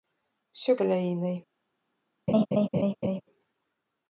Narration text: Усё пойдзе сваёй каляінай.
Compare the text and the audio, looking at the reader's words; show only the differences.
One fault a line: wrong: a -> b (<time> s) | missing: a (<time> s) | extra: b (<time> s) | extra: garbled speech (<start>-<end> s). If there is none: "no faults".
missing: пойдзе сваёй (0.7 s)